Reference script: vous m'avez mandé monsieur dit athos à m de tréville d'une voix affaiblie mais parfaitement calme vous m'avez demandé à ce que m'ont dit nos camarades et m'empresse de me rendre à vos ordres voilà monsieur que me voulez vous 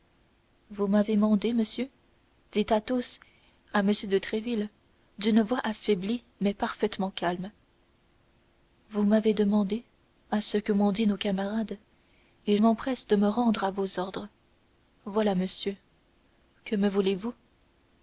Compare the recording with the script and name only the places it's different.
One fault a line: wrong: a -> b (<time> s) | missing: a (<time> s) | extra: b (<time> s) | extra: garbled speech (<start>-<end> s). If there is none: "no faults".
no faults